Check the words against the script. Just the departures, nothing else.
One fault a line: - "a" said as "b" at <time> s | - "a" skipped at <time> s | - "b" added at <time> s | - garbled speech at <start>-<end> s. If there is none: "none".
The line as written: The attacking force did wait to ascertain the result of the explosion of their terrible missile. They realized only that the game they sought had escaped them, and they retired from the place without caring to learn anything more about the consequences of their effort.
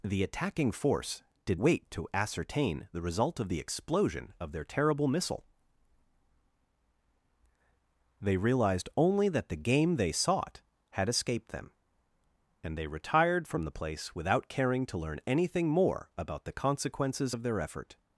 none